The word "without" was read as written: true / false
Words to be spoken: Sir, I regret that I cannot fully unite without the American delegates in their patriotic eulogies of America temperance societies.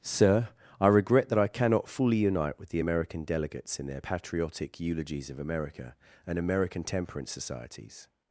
false